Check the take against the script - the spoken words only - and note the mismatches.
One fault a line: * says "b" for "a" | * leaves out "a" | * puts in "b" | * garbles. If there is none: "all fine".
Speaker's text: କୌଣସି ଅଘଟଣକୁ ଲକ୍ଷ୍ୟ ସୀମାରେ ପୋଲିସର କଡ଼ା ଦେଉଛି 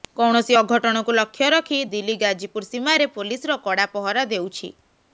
* puts in "ରଖି ଦିଲ୍ଲୀ ଗାଜିପୁର"
* puts in "ପହରା"